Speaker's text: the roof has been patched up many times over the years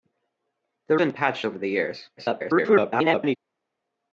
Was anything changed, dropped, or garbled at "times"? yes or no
yes